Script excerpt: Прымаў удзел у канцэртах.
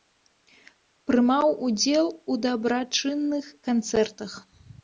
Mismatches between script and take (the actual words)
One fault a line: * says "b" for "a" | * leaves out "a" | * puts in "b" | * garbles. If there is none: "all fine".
* puts in "дабрачынных"